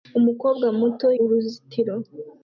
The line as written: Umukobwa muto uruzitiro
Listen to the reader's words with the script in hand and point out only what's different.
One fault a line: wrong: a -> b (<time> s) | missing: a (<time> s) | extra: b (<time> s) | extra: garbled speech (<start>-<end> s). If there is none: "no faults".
no faults